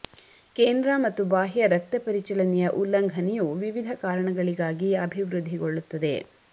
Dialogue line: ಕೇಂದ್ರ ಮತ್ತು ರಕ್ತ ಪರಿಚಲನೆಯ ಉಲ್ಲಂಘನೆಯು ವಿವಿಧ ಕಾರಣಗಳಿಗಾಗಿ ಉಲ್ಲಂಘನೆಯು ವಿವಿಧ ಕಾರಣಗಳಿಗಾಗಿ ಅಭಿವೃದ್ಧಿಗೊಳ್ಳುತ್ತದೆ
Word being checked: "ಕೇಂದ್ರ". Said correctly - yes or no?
yes